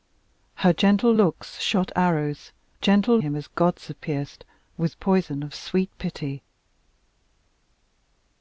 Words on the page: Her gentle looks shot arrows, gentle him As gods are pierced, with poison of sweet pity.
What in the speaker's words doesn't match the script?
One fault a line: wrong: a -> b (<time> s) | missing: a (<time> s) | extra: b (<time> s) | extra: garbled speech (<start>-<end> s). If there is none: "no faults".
no faults